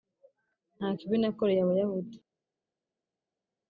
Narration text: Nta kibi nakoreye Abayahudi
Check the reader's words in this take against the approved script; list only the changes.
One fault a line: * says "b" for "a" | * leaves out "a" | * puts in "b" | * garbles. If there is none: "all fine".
all fine